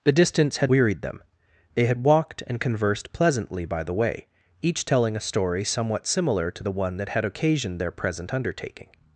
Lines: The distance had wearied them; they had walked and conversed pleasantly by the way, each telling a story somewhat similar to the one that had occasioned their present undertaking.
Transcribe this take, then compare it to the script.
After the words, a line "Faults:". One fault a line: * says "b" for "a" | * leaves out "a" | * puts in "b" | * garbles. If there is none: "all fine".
The distance had wearied them; they had walked and conversed pleasantly by the way, each telling a story somewhat similar to the one that had occasioned their present undertaking.
Faults:
all fine